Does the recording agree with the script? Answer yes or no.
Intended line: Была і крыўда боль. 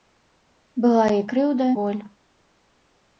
yes